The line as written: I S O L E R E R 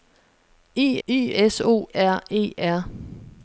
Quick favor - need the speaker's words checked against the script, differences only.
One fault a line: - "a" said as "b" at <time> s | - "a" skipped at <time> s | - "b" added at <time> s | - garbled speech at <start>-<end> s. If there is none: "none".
- "I" added at 1.1 s
- "L E" skipped at 1.9 s